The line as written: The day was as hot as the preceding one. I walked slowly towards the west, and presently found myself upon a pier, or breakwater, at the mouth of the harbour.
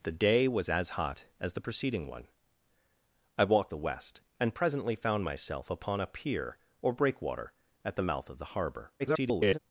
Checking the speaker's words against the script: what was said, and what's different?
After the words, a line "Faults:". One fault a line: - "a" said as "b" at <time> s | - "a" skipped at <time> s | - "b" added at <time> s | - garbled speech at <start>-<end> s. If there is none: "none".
The day was as hot as the preceding one. I walked the west, and presently found myself upon a pier, or breakwater, at the mouth of the harbour. [garbled]
Faults:
- "slowly towards" skipped at 3.7 s
- garbled speech at 9.0-9.6 s